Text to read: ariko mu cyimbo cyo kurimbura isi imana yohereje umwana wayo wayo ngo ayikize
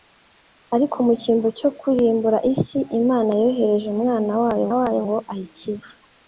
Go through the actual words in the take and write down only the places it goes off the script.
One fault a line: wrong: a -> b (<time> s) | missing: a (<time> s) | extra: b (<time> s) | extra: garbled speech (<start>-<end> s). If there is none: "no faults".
no faults